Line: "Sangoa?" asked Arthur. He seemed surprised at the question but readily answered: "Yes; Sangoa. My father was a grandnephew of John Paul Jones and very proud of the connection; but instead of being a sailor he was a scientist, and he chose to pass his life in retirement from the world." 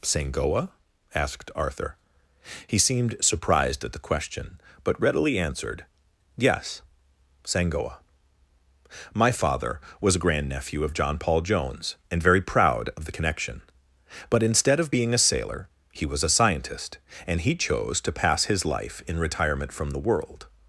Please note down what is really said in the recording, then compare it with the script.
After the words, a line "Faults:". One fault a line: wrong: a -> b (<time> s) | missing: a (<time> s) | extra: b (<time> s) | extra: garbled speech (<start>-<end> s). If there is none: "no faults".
"Sangoa?" asked Arthur. He seemed surprised at the question but readily answered: "Yes; Sangoa. My father was a grandnephew of John Paul Jones and very proud of the connection; but instead of being a sailor he was a scientist, and he chose to pass his life in retirement from the world."
Faults:
no faults